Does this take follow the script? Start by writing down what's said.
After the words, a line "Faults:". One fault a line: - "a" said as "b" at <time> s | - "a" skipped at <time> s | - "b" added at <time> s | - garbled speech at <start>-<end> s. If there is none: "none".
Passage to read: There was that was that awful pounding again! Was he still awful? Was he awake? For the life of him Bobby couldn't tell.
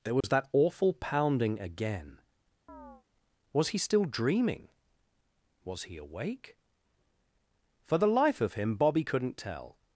There was that awful pounding again! Was he still dreaming? Was he awake? For the life of him Bobby couldn't tell.
Faults:
- "was that" skipped at 0.5 s
- "awful" said as "dreaming" at 4.0 s